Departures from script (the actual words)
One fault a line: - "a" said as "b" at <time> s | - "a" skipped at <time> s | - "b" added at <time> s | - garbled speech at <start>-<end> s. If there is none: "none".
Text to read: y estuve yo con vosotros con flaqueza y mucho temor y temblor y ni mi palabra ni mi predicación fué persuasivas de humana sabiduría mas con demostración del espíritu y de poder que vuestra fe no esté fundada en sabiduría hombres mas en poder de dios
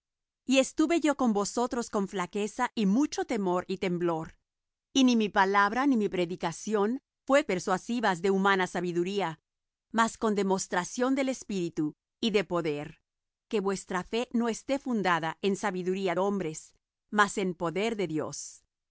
none